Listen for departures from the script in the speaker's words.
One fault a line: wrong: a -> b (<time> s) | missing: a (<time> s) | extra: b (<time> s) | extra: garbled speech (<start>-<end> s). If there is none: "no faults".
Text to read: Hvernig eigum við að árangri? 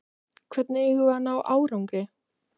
extra: ná (1.3 s)